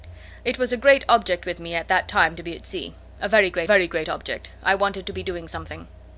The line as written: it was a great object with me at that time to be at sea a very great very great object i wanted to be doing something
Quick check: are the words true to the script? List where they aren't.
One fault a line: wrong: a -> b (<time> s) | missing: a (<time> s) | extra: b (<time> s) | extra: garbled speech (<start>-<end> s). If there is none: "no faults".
no faults